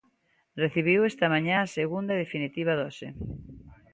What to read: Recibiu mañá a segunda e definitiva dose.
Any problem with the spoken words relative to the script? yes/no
yes